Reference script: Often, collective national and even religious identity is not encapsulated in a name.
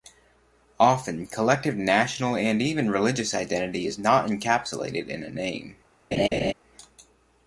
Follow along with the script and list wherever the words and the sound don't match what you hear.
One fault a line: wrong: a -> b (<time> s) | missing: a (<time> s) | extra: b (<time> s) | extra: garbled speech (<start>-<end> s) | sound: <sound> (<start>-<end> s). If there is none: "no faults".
sound: laugh (6.1-6.5 s)